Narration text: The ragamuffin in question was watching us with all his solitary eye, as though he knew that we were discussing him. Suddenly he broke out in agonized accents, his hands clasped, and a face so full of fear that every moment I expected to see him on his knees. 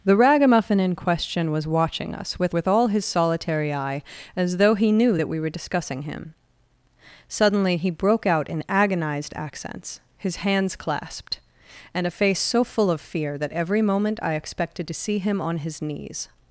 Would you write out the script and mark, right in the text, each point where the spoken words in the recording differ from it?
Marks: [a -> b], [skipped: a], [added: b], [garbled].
The ragamuffin in question was watching us with [added: with] all his solitary eye, as though he knew that we were discussing him. Suddenly he broke out in agonized accents, his hands clasped, and a face so full of fear that every moment I expected to see him on his knees.